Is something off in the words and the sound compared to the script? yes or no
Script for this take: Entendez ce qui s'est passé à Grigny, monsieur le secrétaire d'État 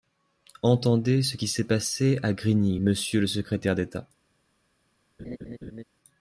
yes